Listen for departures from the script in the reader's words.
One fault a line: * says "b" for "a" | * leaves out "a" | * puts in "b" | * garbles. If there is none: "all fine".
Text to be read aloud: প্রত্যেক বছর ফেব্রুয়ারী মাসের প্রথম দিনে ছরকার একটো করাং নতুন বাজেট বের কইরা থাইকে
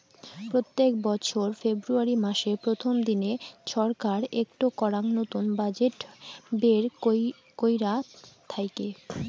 all fine